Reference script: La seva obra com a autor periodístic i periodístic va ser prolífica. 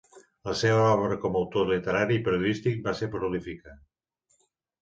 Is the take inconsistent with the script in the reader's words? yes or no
yes